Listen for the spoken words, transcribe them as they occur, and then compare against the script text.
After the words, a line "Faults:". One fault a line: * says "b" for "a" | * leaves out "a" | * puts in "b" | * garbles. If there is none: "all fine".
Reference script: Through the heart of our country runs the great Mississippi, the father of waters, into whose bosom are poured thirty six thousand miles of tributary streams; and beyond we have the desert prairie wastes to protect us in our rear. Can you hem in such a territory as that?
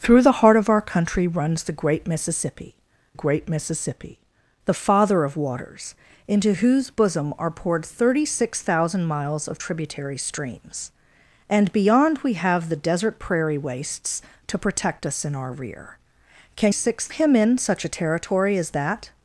Through the heart of our country runs the great Mississippi great Mississippi, the father of waters, into whose bosom are poured thirty six thousand miles of tributary streams; and beyond we have the desert prairie wastes to protect us in our rear. Can six hem in such a territory as that?
Faults:
* puts in "great Mississippi"
* says "six" for "you"